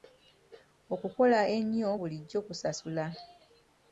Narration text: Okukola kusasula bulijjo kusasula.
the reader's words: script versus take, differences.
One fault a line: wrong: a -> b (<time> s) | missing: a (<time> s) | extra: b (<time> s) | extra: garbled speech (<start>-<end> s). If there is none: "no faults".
wrong: kusasula -> ennyo (1.6 s)